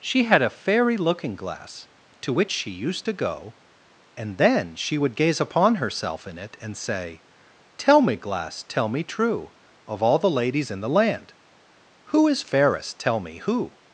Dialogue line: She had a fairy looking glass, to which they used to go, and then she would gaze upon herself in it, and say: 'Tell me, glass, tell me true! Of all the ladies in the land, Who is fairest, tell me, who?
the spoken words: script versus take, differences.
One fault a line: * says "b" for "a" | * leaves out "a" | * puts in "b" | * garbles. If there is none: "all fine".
* says "she" for "they"